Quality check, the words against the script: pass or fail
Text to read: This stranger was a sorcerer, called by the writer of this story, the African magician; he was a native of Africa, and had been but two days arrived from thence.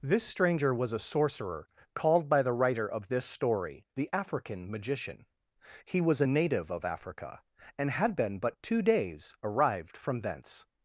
pass